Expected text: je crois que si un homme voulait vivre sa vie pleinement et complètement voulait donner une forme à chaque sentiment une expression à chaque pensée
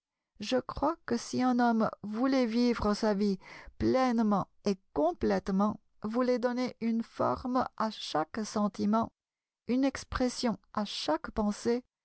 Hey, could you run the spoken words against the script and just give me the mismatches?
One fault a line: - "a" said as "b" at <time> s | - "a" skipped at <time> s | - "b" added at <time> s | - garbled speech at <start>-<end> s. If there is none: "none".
none